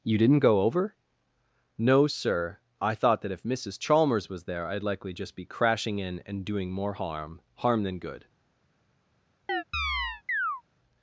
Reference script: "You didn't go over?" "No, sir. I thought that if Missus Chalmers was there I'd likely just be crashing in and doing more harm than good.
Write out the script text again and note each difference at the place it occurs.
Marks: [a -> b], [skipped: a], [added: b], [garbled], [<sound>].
"You didn't go over?" "No, sir. I thought that if Missus Chalmers was there I'd likely just be crashing in and doing more harm [added: harm] than good. [chirp]